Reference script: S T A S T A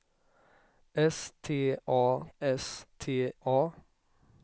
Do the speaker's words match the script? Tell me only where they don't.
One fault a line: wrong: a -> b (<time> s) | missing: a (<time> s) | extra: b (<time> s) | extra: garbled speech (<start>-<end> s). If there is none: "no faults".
no faults